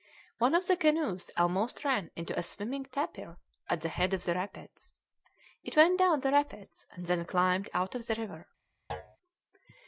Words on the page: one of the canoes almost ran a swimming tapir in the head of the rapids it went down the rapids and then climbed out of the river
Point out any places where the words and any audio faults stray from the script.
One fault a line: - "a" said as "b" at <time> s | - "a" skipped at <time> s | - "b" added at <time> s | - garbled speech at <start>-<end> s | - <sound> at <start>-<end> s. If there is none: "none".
- "into" added at 2.1 s
- "in" said as "at" at 3.7 s
- thud at 8.9-9.2 s